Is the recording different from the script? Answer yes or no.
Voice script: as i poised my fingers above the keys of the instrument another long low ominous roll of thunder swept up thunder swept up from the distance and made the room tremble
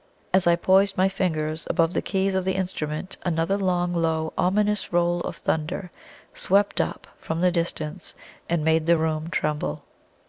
yes